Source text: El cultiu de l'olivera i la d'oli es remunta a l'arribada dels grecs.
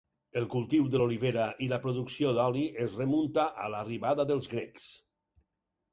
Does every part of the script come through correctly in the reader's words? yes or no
no